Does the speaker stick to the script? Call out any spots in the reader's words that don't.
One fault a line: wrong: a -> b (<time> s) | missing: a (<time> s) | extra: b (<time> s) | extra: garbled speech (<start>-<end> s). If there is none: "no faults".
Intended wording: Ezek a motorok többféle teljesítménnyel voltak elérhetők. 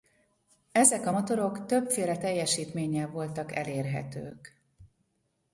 no faults